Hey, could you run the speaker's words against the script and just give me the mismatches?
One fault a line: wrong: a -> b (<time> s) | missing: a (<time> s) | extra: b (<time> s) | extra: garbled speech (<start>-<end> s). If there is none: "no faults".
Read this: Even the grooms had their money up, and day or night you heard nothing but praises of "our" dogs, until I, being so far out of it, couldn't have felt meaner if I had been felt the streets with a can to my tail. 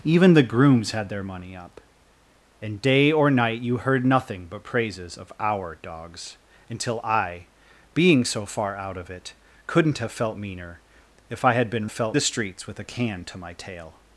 no faults